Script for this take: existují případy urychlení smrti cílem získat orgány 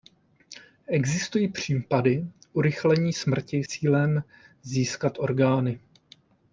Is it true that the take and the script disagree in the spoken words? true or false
false